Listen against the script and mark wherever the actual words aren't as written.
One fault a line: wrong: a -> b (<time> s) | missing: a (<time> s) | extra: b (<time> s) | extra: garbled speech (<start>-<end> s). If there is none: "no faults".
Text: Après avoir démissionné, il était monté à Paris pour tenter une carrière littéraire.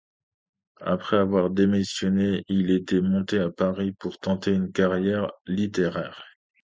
no faults